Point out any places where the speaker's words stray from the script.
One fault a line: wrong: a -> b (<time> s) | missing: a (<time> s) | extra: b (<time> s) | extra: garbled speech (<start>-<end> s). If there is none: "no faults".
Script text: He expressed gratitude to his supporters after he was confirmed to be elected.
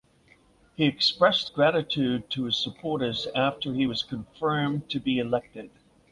no faults